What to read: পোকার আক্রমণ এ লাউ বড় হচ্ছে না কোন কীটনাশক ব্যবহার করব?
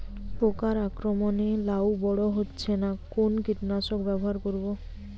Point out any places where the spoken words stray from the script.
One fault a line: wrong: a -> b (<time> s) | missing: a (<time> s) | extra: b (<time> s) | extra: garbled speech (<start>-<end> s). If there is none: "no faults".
no faults